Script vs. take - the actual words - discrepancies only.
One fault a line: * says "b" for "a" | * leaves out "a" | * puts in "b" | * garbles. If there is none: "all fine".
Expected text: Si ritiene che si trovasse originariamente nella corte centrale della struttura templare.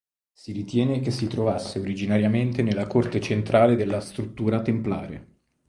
all fine